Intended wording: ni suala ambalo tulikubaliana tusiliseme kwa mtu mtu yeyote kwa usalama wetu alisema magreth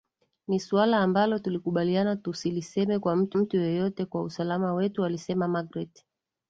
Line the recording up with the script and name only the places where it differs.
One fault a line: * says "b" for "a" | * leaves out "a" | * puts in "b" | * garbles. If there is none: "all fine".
all fine